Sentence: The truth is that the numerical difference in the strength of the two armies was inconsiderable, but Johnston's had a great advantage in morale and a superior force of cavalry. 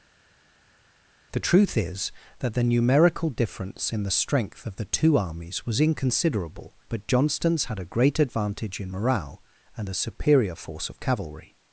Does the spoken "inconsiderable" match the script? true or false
true